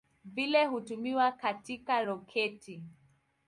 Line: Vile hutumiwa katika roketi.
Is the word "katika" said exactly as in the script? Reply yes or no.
yes